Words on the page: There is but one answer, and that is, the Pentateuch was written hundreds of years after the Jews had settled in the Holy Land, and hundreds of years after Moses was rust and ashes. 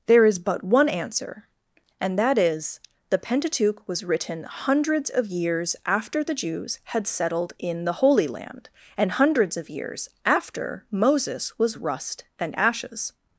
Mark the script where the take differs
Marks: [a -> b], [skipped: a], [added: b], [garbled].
There is but one answer, and that is, the Pentateuch was written hundreds of years after the Jews had settled in the Holy Land, and hundreds of years after Moses was rust and ashes.